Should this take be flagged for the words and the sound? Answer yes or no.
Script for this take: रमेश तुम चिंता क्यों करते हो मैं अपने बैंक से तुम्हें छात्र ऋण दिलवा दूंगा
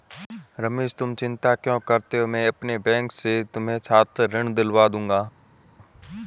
no